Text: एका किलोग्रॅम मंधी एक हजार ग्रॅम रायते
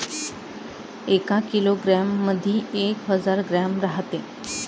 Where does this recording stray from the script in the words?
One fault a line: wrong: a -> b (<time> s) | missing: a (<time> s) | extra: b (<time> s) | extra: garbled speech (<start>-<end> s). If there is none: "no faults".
no faults